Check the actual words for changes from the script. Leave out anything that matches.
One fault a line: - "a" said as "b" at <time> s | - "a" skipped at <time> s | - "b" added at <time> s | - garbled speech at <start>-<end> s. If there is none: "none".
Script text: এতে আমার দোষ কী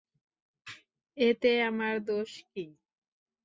none